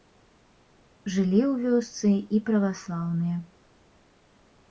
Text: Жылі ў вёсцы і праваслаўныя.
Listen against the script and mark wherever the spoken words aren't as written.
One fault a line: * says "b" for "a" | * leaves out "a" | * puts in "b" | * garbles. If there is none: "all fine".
all fine